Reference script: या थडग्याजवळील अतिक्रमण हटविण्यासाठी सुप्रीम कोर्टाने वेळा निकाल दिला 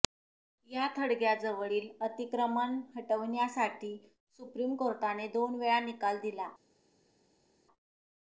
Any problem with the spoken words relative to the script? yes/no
yes